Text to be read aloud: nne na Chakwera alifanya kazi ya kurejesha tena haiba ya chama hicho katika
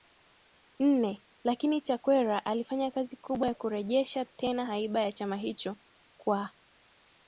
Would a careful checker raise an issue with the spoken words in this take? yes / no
yes